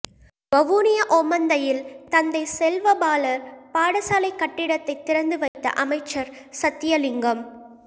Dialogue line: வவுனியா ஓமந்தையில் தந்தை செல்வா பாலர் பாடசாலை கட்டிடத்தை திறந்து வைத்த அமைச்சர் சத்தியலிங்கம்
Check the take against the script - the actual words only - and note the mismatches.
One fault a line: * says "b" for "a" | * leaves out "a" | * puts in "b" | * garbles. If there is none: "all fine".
all fine